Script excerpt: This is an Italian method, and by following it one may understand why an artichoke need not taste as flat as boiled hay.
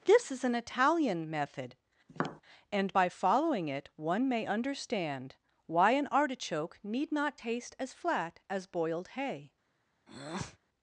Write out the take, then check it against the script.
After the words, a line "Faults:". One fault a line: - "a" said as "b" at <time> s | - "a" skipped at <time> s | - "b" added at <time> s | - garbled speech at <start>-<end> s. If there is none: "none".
This is an Italian method, and by following it one may understand why an artichoke need not taste as flat as boiled hay.
Faults:
none